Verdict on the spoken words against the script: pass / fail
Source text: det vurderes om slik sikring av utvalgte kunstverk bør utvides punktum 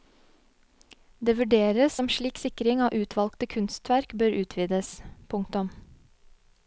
pass